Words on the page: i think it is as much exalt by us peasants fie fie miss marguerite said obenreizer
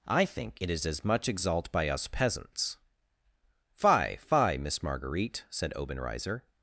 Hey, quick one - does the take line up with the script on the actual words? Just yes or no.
yes